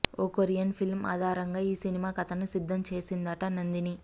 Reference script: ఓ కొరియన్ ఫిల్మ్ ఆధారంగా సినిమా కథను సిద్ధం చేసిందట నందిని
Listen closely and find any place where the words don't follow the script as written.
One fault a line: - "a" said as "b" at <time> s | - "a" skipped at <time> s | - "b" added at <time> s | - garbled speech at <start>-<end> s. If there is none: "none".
- "ఈ" added at 1.6 s